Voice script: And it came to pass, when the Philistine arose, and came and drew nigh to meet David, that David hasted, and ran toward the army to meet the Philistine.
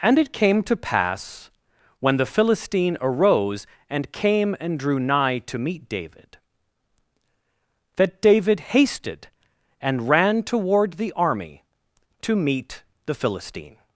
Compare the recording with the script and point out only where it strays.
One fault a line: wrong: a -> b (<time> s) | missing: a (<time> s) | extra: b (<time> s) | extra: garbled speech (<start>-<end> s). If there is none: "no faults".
no faults